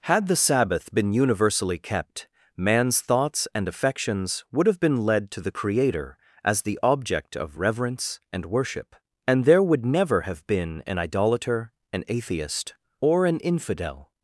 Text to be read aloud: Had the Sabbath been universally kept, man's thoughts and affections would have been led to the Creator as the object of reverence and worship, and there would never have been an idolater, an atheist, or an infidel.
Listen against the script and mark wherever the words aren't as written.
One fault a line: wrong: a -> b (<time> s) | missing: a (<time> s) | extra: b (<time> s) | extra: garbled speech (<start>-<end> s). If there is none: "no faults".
no faults